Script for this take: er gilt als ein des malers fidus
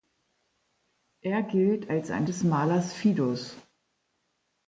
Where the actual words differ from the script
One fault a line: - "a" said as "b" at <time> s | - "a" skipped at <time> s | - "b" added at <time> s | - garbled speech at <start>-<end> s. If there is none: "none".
none